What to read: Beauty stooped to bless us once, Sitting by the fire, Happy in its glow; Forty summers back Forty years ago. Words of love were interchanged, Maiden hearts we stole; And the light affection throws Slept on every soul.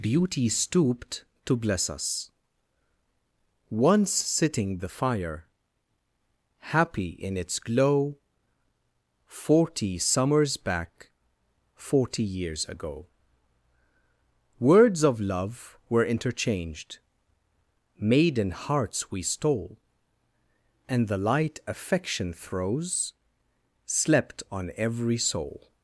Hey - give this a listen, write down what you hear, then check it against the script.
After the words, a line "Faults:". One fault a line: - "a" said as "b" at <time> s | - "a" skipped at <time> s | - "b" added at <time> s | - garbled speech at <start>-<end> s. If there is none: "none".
Beauty stooped to bless us once, Sitting the fire, Happy in its glow; Forty summers back Forty years ago. Words of love were interchanged, Maiden hearts we stole; And the light affection throws Slept on every soul.
Faults:
- "by" skipped at 4.8 s